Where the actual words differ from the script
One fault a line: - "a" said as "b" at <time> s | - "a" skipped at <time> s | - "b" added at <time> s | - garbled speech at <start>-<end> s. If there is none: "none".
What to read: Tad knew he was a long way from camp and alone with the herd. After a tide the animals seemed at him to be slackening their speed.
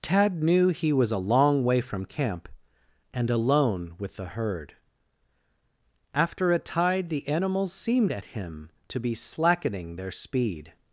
none